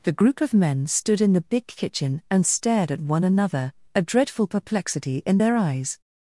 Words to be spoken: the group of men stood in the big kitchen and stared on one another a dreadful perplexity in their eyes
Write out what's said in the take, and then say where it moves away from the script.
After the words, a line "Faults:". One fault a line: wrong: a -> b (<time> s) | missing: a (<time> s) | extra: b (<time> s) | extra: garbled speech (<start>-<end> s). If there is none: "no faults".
the group of men stood in the big kitchen and stared at one another a dreadful perplexity in their eyes
Faults:
wrong: on -> at (2.9 s)